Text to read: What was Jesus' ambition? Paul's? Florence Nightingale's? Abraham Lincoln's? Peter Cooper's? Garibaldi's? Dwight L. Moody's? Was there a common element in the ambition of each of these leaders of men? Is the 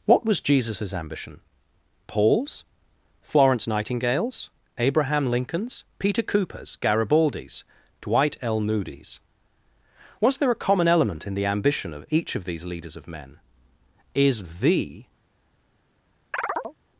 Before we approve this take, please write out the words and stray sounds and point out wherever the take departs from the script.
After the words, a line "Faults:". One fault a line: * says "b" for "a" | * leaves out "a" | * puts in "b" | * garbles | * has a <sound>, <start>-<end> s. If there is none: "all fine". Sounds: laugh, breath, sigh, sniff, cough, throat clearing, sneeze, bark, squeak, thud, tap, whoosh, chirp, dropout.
What was Jesus' ambition? Paul's? Florence Nightingale's? Abraham Lincoln's? Peter Cooper's? Garibaldi's? Dwight L. Moody's? Was there a common element in the ambition of each of these leaders of men? Is the
Faults:
* has a chirp, 16.3-16.8 s